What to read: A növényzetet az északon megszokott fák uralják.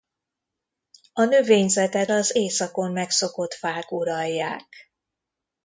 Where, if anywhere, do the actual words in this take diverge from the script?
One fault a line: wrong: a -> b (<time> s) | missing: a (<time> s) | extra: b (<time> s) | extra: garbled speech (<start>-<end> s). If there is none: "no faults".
no faults